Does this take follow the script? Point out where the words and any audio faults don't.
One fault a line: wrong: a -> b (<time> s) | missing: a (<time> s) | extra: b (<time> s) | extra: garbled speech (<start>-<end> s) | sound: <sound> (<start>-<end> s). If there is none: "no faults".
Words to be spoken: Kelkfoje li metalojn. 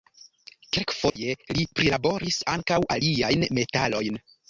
sound: dropout (1.1-1.2 s)
extra: prilaboris ankaŭ aliajn (1.8 s)